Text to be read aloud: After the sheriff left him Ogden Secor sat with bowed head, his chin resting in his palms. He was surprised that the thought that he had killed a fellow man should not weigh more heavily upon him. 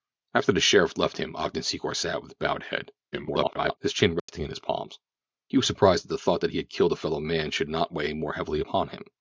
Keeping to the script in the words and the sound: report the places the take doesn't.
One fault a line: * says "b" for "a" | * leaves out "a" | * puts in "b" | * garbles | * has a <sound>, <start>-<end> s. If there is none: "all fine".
* garbles
* has a dropout, 4.2-4.3 s